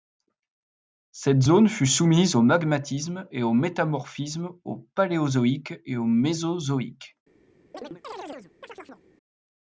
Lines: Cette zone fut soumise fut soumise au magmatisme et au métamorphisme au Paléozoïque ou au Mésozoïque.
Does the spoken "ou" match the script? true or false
false